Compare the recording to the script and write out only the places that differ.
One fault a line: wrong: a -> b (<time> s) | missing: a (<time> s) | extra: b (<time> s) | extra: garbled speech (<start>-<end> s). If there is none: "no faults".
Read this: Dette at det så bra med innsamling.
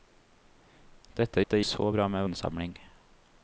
no faults